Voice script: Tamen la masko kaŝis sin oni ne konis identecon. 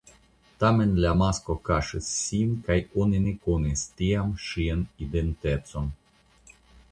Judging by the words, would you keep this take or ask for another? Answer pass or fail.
fail